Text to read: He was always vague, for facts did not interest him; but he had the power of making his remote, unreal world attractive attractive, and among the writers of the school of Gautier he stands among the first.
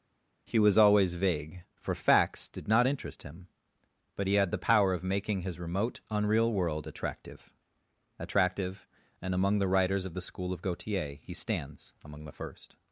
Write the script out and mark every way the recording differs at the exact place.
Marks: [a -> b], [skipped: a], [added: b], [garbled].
He was always vague, for facts did not interest him; but he had the power of making his remote, unreal world attractive attractive, and among the writers of the school of Gautier he stands among the first.